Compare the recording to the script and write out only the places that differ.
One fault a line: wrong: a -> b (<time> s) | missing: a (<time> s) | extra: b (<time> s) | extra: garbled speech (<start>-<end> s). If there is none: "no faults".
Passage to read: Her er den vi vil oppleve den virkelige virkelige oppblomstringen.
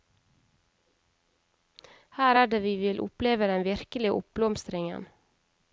wrong: den -> det (2.5 s)
missing: virkelige (4.1 s)